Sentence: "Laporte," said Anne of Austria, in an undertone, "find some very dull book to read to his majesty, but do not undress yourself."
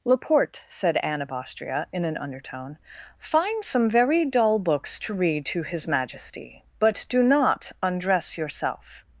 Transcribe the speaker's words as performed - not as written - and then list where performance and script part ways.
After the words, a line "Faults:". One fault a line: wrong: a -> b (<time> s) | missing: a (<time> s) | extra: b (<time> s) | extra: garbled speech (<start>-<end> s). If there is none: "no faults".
"Laporte," said Anne of Austria, in an undertone, "find some very dull books to read to his majesty, but do not undress yourself."
Faults:
wrong: book -> books (4.6 s)